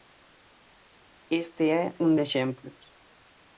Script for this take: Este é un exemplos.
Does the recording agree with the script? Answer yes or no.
yes